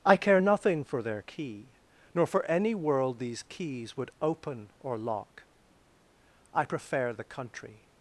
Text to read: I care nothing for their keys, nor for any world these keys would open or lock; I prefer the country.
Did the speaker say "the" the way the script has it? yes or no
yes